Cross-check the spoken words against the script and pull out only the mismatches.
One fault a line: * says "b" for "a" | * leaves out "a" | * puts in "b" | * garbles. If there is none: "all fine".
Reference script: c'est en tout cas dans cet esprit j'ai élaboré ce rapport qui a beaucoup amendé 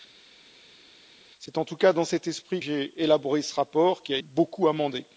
all fine